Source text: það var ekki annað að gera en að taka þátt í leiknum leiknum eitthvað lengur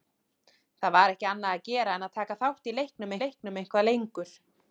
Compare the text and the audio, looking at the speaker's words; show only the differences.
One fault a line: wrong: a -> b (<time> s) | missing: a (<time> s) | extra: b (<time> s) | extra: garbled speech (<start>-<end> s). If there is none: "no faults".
no faults